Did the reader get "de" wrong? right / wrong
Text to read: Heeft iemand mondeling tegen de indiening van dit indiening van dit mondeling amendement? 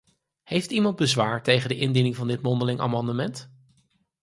right